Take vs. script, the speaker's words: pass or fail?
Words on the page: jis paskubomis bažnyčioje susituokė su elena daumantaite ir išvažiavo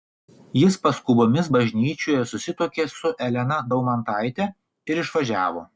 pass